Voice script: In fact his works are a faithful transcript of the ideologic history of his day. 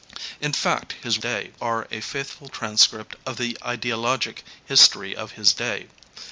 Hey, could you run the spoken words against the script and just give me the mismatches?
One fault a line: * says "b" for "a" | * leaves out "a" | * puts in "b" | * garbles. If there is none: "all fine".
* says "day" for "works"